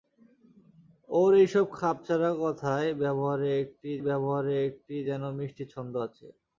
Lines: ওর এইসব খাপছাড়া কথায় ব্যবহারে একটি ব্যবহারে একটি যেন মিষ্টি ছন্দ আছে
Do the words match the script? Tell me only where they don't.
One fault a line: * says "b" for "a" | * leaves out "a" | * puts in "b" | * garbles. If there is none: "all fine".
all fine